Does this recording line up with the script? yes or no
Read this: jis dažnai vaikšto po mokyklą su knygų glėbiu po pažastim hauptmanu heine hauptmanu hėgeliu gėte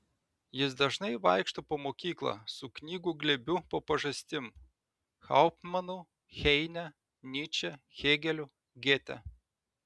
no